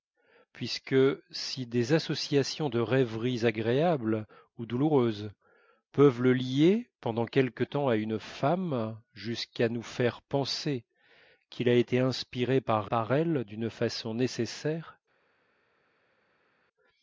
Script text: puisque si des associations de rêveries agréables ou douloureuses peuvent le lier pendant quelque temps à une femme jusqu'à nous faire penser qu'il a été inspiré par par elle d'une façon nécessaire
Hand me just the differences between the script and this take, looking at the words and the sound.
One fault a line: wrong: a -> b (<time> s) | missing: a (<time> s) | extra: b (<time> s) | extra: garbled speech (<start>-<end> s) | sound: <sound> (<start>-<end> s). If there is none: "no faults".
no faults